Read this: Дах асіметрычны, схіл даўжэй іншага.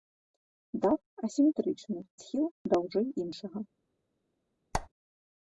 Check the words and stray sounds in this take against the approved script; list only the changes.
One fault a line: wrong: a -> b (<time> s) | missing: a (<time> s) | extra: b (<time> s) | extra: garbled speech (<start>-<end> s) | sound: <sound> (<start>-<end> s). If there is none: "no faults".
sound: squeak (4.7-4.9 s)